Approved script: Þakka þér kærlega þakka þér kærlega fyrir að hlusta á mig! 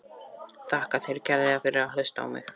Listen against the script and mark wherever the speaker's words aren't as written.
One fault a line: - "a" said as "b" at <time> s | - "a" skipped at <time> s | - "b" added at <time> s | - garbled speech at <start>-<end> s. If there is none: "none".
- "þakka þér kærlega" skipped at 1.6 s